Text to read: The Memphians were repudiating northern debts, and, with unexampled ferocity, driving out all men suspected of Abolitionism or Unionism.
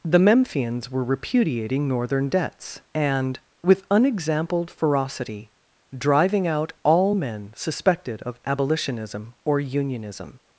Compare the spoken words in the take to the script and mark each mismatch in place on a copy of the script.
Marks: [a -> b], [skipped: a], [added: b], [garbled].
The Memphians were repudiating northern debts, and, with unexampled ferocity, driving out all men suspected of Abolitionism or Unionism.